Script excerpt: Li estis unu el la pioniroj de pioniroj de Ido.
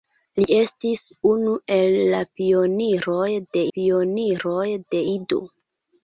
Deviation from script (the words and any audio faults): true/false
false